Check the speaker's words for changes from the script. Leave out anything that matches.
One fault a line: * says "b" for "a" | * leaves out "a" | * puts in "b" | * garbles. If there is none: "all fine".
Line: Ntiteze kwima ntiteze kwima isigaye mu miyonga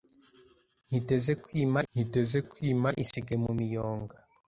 all fine